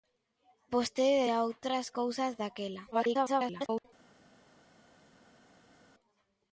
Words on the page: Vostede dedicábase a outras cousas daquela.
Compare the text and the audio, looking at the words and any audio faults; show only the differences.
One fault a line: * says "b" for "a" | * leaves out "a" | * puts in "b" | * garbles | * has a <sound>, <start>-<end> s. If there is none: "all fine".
* leaves out "dedicábase"
* garbles